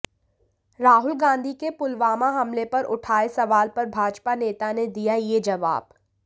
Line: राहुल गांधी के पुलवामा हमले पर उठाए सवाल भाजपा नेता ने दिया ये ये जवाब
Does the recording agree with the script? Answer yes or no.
no